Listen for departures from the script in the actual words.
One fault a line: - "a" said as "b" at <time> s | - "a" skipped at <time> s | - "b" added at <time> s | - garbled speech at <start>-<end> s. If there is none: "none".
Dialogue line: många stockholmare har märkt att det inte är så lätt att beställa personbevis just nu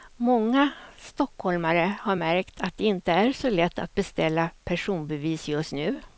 none